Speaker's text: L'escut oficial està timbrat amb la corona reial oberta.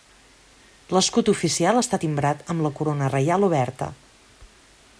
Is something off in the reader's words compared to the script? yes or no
no